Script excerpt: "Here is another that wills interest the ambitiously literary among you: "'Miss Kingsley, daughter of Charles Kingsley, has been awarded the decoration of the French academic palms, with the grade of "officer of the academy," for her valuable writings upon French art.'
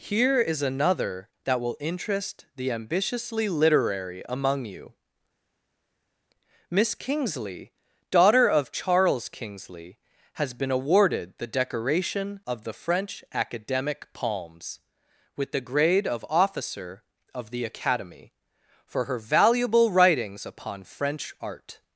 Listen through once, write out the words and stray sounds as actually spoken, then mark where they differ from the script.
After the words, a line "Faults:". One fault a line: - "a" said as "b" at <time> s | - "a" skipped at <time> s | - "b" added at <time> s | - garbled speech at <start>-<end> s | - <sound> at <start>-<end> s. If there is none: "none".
"Here is another that will interest the ambitiously literary among you: "'Miss Kingsley, daughter of Charles Kingsley, has been awarded the decoration of the French academic palms, with the grade of "officer of the academy," for her valuable writings upon French art.'
Faults:
- "wills" said as "will" at 1.6 s